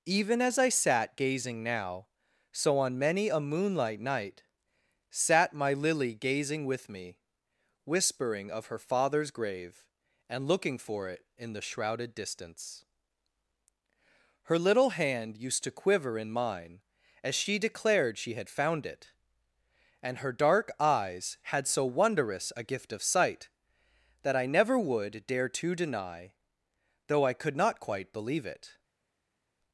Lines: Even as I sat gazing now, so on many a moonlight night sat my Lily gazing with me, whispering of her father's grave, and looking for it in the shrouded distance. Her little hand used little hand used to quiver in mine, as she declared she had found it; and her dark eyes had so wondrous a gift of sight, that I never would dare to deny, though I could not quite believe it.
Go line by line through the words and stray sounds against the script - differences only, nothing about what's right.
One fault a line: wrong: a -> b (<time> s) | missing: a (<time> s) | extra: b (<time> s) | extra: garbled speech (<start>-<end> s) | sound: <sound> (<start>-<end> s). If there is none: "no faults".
missing: little hand used (15.6 s)